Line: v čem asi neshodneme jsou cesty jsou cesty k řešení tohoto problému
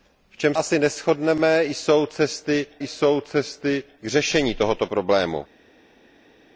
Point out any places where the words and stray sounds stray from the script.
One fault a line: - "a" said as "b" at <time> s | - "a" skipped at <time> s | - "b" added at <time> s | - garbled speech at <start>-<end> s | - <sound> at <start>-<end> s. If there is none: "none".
none